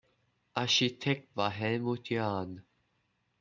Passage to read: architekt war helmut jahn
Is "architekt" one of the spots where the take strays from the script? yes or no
no